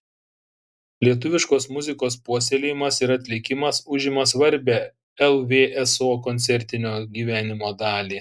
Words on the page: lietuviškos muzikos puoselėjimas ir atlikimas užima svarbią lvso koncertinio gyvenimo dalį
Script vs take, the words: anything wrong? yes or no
no